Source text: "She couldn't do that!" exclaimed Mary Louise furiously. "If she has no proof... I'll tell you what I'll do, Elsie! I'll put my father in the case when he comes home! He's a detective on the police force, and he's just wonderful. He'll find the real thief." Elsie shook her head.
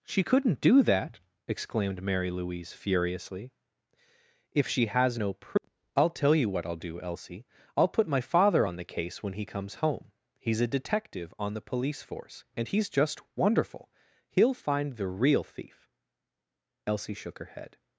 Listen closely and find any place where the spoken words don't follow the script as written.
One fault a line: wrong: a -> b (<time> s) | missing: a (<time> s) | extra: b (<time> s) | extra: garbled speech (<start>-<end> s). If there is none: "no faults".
wrong: in -> on (8.6 s)